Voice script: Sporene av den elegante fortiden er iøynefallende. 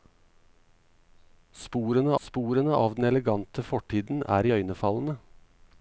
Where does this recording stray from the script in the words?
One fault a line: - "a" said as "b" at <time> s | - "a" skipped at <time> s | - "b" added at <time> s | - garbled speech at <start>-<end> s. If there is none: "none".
- "sporene" added at 2.2 s